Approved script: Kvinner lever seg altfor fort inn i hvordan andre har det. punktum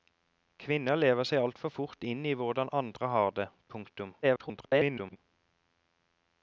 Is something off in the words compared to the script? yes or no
yes